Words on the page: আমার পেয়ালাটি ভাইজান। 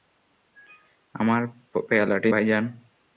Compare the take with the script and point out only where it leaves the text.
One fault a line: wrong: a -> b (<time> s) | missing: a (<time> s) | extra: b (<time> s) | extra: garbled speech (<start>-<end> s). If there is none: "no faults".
no faults